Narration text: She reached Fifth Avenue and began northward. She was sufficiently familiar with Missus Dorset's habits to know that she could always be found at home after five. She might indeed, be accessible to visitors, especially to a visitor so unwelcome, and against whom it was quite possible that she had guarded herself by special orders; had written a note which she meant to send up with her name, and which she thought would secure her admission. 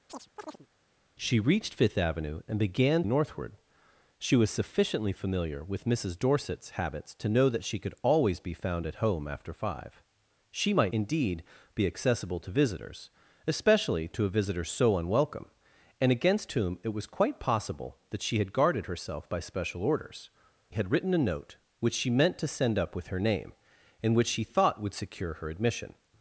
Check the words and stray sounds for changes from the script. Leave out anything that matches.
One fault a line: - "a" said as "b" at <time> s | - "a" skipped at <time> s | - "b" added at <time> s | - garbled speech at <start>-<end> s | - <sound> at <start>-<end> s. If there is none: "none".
- chirp at 0.1-0.7 s